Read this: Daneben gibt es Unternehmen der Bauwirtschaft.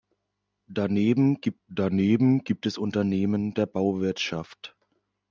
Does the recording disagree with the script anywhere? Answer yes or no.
yes